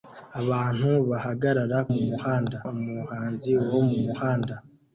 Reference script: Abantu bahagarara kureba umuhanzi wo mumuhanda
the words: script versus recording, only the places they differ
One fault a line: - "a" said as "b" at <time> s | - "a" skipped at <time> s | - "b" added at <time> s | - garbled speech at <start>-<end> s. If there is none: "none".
- "kureba" said as "mumuhanda" at 1.9 s